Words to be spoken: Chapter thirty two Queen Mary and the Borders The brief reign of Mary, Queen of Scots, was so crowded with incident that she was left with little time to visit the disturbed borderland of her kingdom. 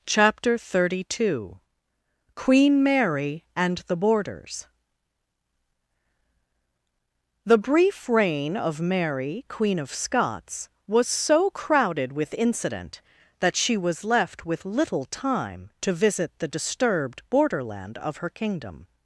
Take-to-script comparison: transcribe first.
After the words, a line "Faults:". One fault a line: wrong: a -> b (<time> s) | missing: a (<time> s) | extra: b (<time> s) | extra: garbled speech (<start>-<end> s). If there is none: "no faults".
Chapter thirty two Queen Mary and the Borders The brief reign of Mary, Queen of Scots, was so crowded with incident that she was left with little time to visit the disturbed borderland of her kingdom.
Faults:
no faults